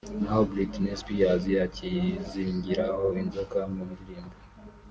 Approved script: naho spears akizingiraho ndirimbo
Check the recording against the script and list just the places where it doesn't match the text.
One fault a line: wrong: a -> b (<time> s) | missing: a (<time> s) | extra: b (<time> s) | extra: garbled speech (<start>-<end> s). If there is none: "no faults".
extra: britney (0.5 s)
extra: inzoka mu (3.2 s)